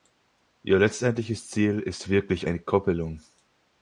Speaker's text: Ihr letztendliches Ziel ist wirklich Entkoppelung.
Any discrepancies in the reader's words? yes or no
no